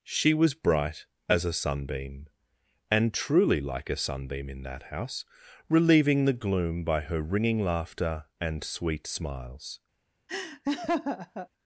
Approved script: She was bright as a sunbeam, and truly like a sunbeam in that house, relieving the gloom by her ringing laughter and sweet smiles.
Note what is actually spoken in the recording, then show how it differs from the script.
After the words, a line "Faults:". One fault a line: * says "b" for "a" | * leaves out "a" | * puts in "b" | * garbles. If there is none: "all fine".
She was bright as a sunbeam, and truly like a sunbeam in that house, relieving the gloom by her ringing laughter and sweet smiles.
Faults:
all fine